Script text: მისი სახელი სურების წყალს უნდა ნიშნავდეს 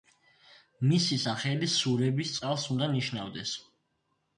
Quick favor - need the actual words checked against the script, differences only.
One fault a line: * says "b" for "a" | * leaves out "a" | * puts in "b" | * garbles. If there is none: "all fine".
all fine